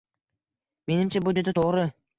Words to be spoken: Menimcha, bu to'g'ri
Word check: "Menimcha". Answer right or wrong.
right